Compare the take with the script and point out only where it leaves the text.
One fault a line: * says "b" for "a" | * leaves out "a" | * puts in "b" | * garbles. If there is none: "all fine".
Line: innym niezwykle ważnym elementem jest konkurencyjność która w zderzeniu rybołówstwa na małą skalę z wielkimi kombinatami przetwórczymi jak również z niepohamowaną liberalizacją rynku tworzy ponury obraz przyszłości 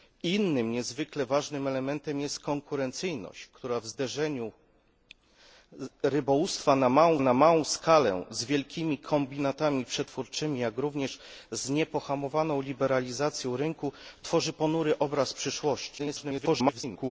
* puts in "na małą"
* garbles